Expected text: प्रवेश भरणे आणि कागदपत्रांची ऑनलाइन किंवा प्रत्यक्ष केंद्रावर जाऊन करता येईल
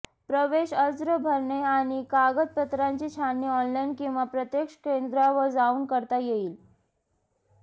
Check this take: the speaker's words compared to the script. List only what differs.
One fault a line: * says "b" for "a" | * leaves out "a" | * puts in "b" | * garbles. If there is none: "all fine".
* puts in "अर्ज"
* puts in "छाननी"